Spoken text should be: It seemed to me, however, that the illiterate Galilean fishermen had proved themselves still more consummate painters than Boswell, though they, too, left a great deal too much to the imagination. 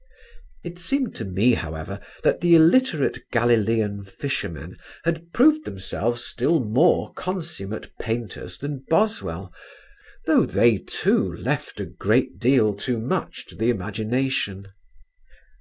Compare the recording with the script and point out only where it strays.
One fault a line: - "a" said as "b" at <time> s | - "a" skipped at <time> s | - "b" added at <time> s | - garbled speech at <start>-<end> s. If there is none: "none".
none